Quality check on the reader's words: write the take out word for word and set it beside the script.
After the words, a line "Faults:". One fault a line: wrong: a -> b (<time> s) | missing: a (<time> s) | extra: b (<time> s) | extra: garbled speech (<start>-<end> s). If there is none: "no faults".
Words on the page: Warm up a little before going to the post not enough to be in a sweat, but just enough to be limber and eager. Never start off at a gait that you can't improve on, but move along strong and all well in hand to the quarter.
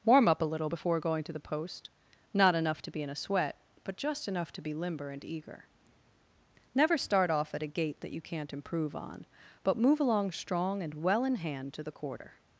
Warm up a little before going to the post not enough to be in a sweat, but just enough to be limber and eager. Never start off at a gait that you can't improve on, but move along strong and well in hand to the quarter.
Faults:
missing: all (11.0 s)